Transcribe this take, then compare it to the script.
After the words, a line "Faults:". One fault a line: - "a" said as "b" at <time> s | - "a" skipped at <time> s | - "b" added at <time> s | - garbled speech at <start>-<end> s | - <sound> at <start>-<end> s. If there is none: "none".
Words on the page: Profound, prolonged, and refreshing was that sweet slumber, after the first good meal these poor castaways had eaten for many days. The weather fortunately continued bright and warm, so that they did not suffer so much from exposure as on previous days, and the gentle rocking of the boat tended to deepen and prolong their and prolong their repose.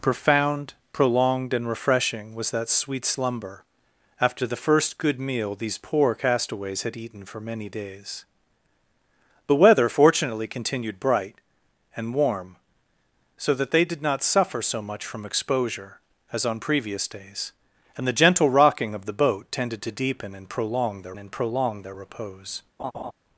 Profound, prolonged, and refreshing was that sweet slumber, after the first good meal these poor castaways had eaten for many days. The weather fortunately continued bright and warm, so that they did not suffer so much from exposure as on previous days, and the gentle rocking of the boat tended to deepen and prolong their and prolong their repose.
Faults:
- laugh at 22.8-23.1 s